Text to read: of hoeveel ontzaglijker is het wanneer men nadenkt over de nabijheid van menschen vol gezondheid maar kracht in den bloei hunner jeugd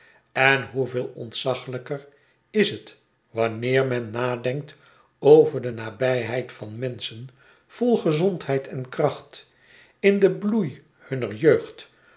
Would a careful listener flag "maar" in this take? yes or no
yes